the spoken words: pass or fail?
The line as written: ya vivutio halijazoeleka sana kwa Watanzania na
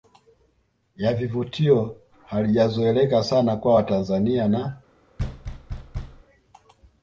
pass